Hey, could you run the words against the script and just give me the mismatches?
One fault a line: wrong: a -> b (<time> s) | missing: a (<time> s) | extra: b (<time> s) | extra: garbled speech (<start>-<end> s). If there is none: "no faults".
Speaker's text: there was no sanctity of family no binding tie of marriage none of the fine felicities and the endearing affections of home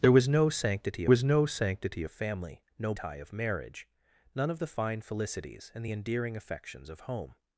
extra: was no sanctity (1.1 s)
missing: binding (2.9 s)